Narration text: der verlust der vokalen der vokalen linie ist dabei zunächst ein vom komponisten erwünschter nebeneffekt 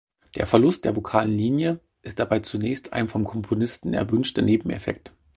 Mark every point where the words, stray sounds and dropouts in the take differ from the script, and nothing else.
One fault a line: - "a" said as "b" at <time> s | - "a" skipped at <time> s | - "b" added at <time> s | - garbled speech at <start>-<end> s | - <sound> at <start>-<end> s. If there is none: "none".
- "der vokalen" skipped at 1.4 s